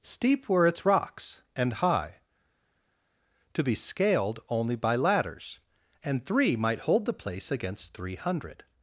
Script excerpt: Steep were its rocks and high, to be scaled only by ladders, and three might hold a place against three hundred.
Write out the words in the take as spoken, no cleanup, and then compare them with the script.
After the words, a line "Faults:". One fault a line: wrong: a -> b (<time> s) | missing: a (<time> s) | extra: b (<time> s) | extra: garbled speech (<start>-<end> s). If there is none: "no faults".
Steep were its rocks and high, to be scaled only by ladders, and three might hold the place against three hundred.
Faults:
wrong: a -> the (7.1 s)